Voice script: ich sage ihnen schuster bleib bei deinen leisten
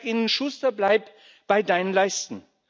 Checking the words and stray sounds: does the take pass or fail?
pass